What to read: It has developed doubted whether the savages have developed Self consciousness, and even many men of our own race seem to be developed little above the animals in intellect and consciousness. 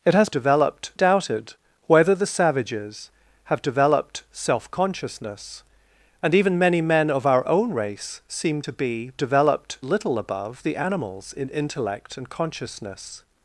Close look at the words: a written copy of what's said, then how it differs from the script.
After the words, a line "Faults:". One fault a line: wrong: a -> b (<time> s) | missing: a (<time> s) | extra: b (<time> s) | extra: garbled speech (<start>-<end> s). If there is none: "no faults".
It has developed doubted whether the savages have developed Self consciousness, and even many men of our own race seem to be developed little above the animals in intellect and consciousness.
Faults:
no faults